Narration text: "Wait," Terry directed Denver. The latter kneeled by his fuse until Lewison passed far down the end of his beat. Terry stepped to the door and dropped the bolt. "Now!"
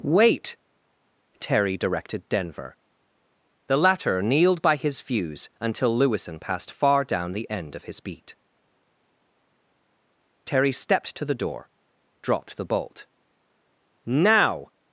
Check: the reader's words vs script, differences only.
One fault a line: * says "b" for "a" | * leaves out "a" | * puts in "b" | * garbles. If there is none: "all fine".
* leaves out "and"